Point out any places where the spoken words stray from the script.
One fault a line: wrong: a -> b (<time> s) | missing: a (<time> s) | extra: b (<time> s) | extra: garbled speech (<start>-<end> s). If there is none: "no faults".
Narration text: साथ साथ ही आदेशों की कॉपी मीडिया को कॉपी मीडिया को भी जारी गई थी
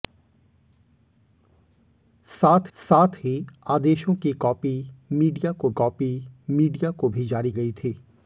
no faults